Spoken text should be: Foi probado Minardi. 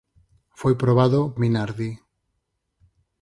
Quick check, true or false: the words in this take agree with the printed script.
true